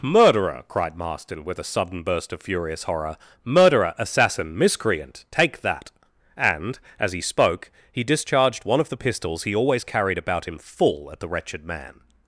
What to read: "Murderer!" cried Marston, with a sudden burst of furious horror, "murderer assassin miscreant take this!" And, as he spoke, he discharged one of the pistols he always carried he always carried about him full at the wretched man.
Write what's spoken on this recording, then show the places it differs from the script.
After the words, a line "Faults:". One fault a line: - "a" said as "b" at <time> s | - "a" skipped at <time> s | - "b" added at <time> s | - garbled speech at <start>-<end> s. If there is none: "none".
"Murderer!" cried Marston, with a sudden burst of furious horror, "murderer assassin miscreant take that!" And, as he spoke, he discharged one of the pistols he always carried about him full at the wretched man.
Faults:
- "this" said as "that" at 5.6 s
- "he always carried" skipped at 10.2 s